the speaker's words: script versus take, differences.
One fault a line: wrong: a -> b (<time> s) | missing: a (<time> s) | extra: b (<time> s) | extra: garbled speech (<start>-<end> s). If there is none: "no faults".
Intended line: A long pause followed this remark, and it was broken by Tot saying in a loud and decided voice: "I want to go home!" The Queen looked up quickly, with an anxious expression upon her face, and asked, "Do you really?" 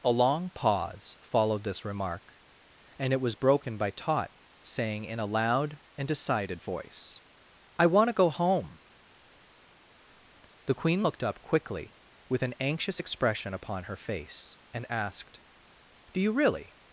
no faults